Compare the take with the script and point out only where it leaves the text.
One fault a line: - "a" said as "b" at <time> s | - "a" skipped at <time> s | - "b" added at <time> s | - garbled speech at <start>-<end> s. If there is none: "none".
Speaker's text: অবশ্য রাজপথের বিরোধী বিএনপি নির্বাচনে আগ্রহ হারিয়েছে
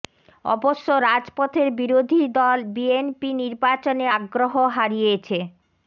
- "দল" added at 2.4 s